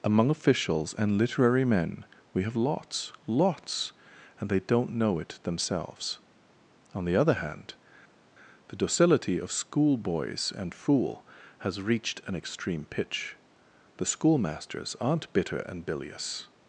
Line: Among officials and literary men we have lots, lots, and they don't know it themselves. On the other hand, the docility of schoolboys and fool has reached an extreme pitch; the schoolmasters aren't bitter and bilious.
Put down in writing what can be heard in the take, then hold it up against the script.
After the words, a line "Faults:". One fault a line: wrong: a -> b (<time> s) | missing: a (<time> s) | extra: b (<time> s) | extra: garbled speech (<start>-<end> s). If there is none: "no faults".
Among officials and literary men we have lots, lots, and they don't know it themselves. On the other hand, the docility of schoolboys and fool has reached an extreme pitch; the schoolmasters aren't bitter and bilious.
Faults:
no faults